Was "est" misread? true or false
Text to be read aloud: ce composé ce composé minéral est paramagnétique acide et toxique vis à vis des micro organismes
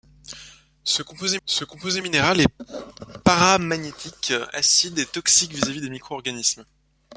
false